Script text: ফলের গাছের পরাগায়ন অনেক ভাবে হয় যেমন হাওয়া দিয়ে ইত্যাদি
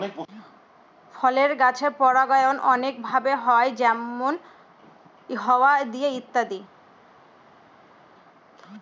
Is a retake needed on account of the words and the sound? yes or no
no